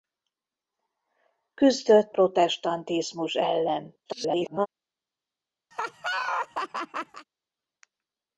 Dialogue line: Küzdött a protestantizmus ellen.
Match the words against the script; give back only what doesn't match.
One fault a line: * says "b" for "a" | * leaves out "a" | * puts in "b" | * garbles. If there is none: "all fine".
* leaves out "a"
* garbles